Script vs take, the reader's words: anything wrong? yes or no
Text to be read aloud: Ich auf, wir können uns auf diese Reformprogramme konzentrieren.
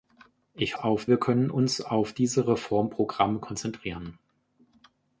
no